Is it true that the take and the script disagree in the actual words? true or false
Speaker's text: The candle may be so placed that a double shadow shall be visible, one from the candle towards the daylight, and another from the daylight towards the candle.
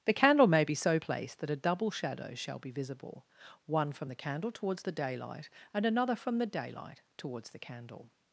false